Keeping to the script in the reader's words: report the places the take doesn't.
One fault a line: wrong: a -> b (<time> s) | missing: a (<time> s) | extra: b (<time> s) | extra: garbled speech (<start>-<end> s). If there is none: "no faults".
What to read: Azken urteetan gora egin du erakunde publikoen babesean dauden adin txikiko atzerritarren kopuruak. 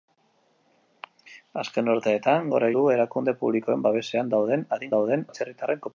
missing: egin (2.7 s)
wrong: txikiko -> dauden (5.0 s)